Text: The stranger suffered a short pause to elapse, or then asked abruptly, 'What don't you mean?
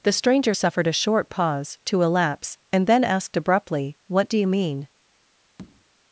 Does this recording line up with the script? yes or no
no